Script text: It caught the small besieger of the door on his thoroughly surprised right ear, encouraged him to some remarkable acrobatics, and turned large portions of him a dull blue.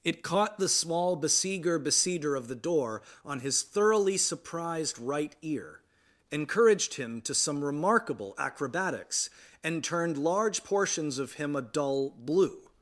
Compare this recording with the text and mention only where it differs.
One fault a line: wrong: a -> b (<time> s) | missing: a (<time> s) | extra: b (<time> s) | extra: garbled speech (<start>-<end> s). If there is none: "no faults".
extra: besieger (1.8 s)